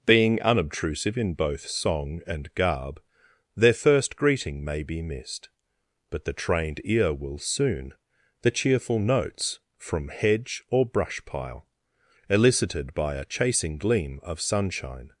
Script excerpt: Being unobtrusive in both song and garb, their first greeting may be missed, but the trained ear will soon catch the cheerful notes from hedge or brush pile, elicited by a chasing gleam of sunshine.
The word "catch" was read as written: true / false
false